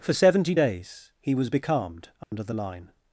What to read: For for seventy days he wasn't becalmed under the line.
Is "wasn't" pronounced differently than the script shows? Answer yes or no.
yes